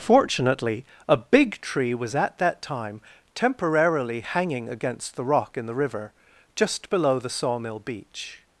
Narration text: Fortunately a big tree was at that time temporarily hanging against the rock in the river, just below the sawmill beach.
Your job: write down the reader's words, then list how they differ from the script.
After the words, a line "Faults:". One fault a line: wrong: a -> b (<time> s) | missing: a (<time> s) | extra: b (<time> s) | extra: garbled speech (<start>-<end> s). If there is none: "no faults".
Fortunately a big tree was at that time temporarily hanging against the rock in the river, just below the sawmill beach.
Faults:
no faults